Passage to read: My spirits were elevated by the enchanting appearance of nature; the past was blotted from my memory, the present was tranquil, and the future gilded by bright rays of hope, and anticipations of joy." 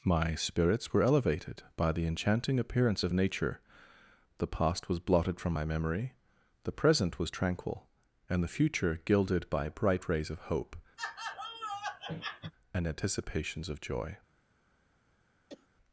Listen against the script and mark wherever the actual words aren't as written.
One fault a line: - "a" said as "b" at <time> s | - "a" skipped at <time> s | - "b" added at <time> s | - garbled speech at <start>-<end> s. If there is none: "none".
none